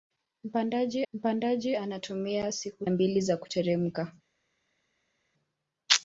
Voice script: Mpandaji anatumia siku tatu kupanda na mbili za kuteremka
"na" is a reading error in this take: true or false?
true